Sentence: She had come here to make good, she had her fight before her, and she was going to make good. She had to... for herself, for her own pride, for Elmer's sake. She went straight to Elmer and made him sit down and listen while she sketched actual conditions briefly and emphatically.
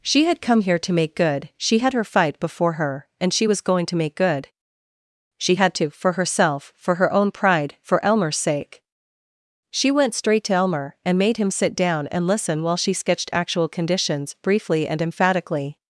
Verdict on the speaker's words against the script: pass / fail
pass